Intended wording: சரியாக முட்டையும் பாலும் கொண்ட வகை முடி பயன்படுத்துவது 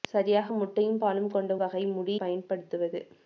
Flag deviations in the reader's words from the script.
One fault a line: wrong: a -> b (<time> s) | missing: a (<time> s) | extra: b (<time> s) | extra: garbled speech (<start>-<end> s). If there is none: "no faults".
no faults